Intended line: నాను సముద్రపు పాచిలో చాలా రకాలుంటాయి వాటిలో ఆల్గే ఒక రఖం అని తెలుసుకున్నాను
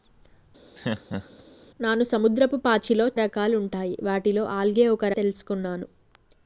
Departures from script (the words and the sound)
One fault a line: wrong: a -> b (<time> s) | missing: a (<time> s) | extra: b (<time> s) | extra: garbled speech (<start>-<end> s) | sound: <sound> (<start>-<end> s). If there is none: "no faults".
sound: laugh (0.7-1.4 s)
missing: చాలా (3.1 s)
missing: రఖం అని (5.1 s)